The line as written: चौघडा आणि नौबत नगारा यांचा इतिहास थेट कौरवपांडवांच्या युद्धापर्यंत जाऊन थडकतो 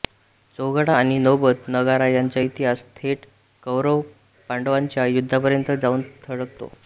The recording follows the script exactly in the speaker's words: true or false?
true